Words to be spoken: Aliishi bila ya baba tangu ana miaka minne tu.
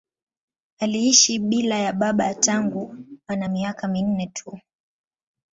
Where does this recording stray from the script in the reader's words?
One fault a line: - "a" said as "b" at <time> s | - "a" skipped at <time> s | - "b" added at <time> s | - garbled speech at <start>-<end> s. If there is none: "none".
none